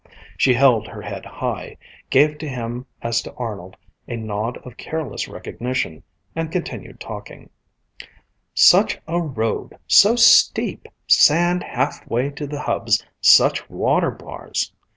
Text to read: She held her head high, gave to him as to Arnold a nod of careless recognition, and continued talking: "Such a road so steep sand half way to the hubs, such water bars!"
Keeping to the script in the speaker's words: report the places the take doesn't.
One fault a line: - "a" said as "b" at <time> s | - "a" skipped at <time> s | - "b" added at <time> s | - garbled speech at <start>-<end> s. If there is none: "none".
none